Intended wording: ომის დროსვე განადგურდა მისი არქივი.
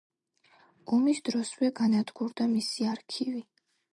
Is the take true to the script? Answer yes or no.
yes